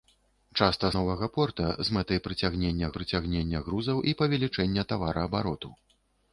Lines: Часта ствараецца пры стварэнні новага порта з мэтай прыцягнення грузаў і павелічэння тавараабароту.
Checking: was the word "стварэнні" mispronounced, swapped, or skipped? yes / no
yes